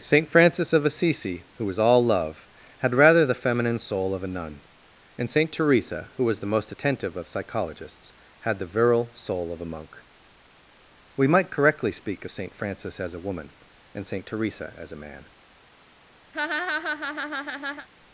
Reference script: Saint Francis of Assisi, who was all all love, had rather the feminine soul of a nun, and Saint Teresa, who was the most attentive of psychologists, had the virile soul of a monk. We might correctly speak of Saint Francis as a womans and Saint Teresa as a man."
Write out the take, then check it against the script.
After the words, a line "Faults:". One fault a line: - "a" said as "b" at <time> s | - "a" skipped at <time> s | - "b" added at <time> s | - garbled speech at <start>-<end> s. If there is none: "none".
Saint Francis of Assisi, who was all love, had rather the feminine soul of a nun, and Saint Teresa, who was the most attentive of psychologists, had the virile soul of a monk. We might correctly speak of Saint Francis as a woman and Saint Teresa as a man."
Faults:
- "all" skipped at 2.0 s
- "womans" said as "woman" at 13.2 s